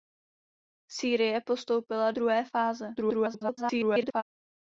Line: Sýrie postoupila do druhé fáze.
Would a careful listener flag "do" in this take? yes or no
yes